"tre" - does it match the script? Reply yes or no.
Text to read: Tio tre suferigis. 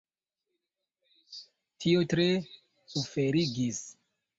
yes